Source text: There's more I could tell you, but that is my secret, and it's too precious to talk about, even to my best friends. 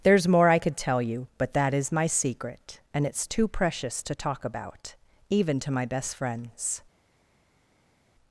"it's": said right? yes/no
yes